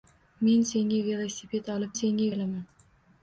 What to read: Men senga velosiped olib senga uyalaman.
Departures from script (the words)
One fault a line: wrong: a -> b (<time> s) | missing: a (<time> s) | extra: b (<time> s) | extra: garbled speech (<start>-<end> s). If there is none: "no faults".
no faults